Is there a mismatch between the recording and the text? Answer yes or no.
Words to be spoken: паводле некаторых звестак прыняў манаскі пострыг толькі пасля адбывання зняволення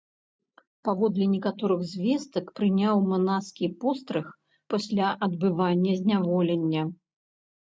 yes